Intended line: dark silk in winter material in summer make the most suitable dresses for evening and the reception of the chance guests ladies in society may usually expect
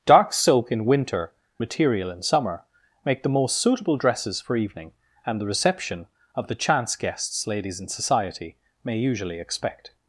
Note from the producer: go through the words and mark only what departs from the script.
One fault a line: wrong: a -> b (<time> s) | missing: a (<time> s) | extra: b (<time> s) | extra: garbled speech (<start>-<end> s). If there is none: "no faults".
no faults